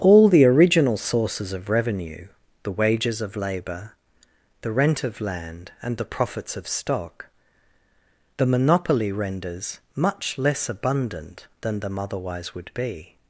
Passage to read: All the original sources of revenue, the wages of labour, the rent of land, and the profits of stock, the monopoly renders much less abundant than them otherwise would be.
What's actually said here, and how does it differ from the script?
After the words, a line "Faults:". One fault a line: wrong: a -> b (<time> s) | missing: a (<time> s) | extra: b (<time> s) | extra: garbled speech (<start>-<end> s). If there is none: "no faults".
All the original sources of revenue, the wages of labour, the rent of land, and the profits of stock, the monopoly renders much less abundant than them otherwise would be.
Faults:
no faults